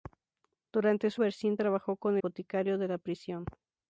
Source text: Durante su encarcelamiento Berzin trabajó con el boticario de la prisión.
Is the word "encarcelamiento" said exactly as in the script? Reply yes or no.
no